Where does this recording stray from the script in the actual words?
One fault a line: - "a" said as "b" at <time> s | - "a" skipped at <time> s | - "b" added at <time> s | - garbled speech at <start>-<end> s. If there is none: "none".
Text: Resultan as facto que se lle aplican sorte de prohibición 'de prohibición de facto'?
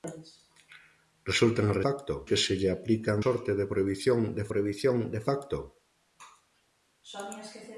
none